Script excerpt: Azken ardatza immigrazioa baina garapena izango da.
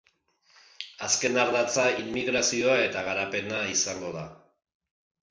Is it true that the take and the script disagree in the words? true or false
true